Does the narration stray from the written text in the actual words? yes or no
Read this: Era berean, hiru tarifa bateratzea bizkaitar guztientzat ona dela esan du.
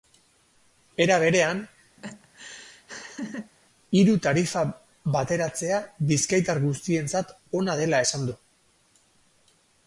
no